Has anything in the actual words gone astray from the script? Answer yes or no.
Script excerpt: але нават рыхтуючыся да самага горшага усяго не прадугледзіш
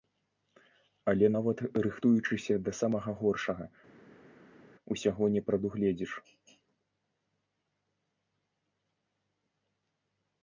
no